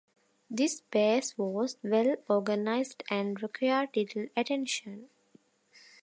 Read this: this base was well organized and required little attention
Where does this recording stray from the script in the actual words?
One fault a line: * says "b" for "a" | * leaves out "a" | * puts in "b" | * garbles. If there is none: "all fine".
all fine